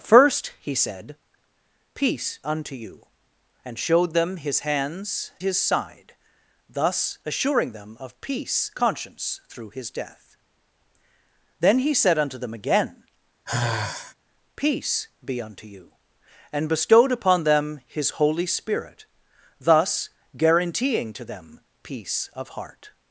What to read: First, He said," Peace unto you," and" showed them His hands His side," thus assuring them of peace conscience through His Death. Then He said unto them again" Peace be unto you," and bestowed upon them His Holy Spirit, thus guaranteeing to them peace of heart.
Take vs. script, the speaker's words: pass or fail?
pass